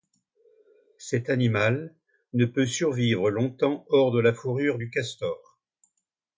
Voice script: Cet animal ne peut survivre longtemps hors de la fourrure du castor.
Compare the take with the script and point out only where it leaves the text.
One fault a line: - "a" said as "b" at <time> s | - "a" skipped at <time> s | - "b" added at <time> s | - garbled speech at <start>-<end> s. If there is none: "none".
none